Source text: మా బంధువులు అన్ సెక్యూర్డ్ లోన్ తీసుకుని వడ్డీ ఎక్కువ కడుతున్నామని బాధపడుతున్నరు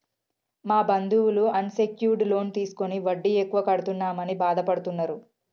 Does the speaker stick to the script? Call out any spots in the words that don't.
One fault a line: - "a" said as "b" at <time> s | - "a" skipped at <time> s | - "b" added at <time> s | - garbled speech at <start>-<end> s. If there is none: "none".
none